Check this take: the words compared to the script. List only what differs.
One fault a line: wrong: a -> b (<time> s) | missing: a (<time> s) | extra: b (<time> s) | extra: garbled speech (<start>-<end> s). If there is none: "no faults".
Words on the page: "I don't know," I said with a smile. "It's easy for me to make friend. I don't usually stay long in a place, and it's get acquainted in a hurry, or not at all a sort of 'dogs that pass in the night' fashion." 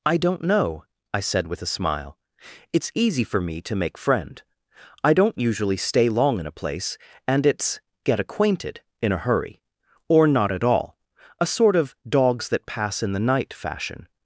no faults